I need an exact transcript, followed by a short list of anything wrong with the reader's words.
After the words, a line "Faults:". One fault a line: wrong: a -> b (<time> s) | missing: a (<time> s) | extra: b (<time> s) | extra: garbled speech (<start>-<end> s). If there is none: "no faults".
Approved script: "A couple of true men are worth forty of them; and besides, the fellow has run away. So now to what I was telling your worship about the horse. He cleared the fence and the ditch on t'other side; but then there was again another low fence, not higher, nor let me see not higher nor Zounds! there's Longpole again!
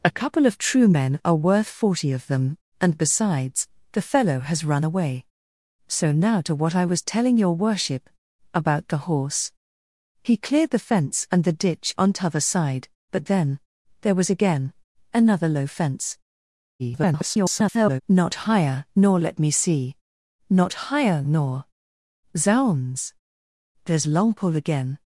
"A couple of true men are worth forty of them; and besides, the fellow has run away. So now to what I was telling your worship about the horse. He cleared the fence and the ditch on t'other side; but then there was again another low fence, [garbled] not higher, nor let me see not higher nor Zounds! there's Longpole again!
Faults:
extra: garbled speech (16.8-18.0 s)